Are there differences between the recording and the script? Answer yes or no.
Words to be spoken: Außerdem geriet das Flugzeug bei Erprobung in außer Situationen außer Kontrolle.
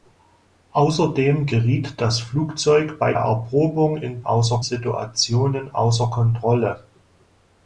no